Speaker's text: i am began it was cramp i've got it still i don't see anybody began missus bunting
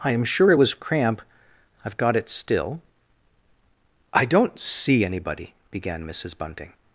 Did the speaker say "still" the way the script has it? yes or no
yes